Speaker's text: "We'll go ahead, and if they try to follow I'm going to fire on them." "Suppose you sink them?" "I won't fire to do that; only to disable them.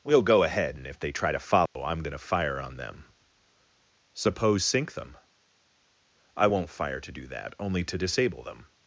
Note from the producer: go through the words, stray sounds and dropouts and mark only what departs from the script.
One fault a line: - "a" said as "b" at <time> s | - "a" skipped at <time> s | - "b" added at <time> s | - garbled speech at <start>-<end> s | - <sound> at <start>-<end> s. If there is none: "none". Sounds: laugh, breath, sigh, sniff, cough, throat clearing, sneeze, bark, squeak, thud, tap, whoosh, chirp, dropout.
- dropout at 1.7-1.8 s
- "you" skipped at 4.7 s